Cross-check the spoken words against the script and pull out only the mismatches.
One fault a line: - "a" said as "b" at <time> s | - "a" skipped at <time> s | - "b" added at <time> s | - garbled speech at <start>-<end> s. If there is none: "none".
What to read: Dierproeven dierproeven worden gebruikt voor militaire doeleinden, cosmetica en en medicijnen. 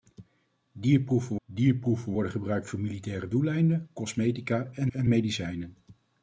none